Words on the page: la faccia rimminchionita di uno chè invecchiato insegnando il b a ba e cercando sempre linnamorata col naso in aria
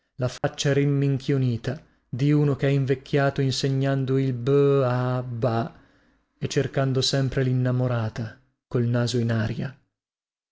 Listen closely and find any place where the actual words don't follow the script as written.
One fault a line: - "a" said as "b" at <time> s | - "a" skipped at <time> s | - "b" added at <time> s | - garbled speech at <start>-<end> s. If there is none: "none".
none